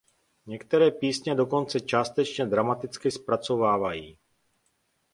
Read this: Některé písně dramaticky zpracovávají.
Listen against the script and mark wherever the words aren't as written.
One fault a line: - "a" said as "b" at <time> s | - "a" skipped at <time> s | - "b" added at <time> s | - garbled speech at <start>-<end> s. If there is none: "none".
- "dokonce částečně" added at 1.4 s